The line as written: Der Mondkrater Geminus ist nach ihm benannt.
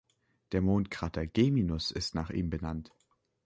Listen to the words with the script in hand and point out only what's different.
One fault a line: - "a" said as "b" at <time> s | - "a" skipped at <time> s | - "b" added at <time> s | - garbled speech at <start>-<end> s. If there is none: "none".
none